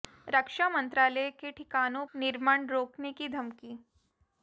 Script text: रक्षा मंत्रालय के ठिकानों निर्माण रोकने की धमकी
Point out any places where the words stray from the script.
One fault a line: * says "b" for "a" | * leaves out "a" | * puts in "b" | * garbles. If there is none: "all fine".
all fine